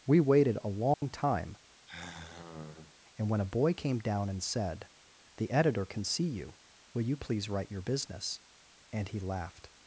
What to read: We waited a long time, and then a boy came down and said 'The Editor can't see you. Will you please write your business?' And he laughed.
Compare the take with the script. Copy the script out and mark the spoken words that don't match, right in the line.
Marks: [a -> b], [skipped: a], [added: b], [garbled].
We waited a long time, and [then -> when] a boy came down and said 'The Editor [can't -> can] see you. Will you please write your business?' And he laughed.